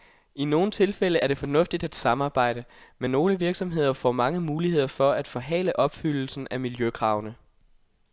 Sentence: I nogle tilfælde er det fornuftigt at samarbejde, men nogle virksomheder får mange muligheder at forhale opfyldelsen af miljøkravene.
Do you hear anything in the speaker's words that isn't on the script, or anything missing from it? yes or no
yes